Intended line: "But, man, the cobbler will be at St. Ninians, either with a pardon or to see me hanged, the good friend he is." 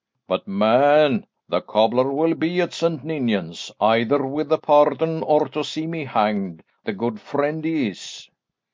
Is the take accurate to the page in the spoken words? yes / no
yes